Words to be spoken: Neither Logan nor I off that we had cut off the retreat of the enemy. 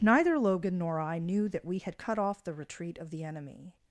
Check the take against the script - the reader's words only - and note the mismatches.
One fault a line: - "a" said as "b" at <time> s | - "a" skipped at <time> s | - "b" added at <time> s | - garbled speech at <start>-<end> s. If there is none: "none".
- "off" said as "knew" at 1.2 s